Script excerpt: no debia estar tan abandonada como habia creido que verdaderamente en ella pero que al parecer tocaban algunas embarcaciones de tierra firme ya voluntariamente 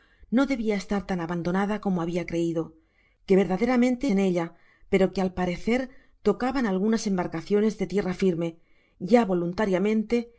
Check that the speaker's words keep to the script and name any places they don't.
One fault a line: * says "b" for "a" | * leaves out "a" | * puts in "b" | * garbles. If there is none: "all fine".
all fine